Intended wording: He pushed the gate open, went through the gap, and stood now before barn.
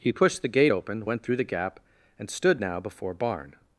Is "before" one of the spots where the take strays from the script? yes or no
no